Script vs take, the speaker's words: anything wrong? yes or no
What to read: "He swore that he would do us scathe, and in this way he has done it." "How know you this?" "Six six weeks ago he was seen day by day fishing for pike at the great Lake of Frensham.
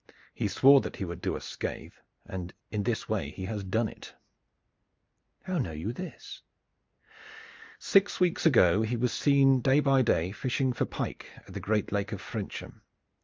yes